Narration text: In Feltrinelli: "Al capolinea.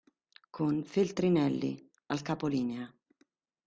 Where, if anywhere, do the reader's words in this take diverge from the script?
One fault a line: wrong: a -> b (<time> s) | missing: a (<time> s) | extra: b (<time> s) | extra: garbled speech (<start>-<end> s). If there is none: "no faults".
wrong: In -> Con (0.5 s)